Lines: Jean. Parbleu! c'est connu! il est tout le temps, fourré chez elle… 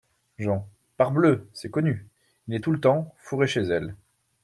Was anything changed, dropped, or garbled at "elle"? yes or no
no